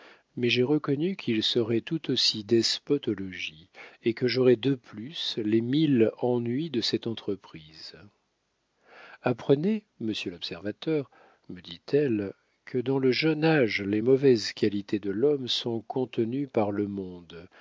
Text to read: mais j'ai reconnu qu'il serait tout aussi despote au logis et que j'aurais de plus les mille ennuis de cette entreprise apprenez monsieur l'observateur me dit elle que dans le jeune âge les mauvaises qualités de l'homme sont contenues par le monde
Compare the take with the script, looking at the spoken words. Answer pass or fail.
pass